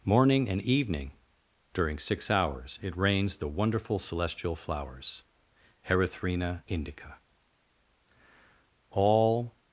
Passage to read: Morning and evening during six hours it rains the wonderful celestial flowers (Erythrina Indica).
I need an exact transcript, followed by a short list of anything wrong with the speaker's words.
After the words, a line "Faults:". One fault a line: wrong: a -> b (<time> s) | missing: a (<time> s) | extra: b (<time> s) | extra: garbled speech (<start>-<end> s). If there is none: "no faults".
Morning and evening during six hours it rains the wonderful celestial flowers (Erythrina Indica). All
Faults:
extra: All (8.9 s)